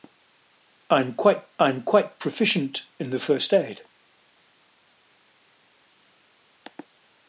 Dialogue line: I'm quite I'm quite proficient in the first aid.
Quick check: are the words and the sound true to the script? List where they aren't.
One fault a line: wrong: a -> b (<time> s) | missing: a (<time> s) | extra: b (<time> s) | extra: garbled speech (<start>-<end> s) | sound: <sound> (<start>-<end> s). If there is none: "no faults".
no faults